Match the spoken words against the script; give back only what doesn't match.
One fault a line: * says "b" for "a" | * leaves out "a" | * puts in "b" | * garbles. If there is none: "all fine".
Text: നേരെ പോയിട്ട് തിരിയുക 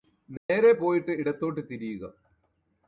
* puts in "ഇടത്തോട്ട്"